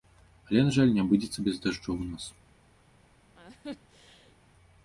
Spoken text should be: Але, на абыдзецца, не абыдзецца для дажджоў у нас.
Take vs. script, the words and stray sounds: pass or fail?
fail